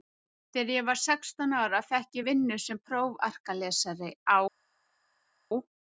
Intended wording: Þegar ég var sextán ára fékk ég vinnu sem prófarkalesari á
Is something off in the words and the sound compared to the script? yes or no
no